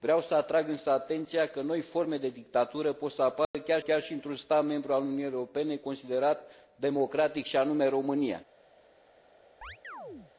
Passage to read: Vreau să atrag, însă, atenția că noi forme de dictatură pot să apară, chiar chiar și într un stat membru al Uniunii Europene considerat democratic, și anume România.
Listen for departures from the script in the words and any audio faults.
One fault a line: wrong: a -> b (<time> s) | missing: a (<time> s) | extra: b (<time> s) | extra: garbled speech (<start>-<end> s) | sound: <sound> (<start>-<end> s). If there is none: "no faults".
sound: dropout (3.4-3.5 s)
sound: chirp (9.6-10.3 s)